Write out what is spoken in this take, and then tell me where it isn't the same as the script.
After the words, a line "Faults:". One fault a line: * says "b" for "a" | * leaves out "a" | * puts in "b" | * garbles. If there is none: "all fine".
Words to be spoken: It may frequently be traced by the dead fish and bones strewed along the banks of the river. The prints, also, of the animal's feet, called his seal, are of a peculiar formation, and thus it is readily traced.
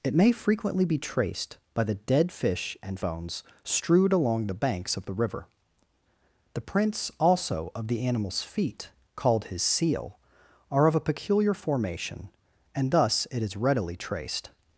It may frequently be traced by the dead fish and bones strewed along the banks of the river. The prints, also, of the animal's feet, called his seal, are of a peculiar formation, and thus it is readily traced.
Faults:
all fine